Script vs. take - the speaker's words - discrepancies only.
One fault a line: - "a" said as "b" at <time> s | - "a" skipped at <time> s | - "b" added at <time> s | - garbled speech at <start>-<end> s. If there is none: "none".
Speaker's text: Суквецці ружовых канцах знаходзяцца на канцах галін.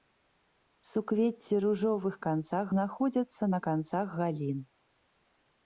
none